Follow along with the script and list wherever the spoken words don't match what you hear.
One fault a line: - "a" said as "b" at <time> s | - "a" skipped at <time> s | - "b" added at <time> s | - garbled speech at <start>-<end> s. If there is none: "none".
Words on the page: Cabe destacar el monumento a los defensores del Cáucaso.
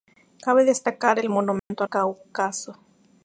- "los defensores del" skipped at 1.9 s